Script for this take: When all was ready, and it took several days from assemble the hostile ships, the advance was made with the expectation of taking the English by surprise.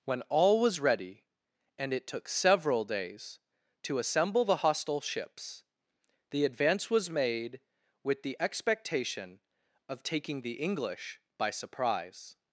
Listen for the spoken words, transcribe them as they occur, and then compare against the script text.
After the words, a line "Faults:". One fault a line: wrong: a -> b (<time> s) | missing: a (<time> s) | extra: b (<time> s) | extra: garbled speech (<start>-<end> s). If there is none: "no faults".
When all was ready, and it took several days to assemble the hostile ships, the advance was made with the expectation of taking the English by surprise.
Faults:
wrong: from -> to (3.8 s)